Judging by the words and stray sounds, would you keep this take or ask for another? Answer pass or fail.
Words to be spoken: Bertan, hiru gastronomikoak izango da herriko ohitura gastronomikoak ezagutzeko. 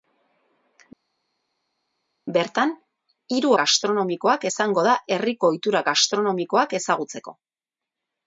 pass